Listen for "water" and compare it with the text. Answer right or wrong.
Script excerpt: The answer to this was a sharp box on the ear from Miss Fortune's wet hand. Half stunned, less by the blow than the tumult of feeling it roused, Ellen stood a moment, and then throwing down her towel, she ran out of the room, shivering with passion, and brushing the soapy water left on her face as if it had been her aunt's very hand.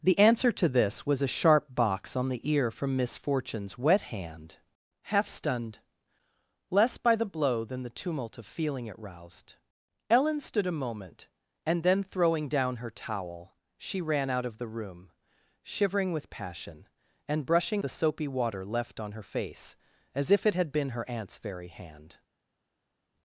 right